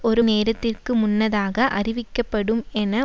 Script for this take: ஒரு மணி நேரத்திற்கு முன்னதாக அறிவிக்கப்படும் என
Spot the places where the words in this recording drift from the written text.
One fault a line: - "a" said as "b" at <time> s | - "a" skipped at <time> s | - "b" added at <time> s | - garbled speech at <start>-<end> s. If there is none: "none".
- "மணி" skipped at 0.2 s